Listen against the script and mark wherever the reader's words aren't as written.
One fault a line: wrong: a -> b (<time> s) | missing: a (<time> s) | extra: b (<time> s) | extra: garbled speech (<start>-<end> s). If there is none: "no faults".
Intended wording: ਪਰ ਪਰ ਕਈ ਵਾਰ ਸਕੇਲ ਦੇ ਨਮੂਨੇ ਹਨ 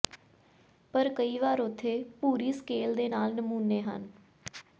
missing: ਪਰ (1.1 s)
extra: ਉੱਥੇ ਭੂਰੀ (1.6 s)
extra: ਨਾਲ (3.1 s)